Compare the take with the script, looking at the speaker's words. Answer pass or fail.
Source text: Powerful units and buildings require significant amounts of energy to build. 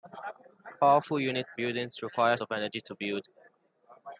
fail